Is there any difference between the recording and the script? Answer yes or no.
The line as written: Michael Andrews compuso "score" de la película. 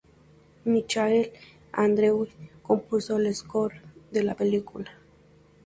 yes